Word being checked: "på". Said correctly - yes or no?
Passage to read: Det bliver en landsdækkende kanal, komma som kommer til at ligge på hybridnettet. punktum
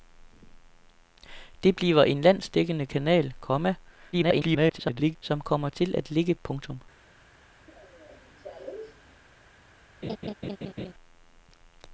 no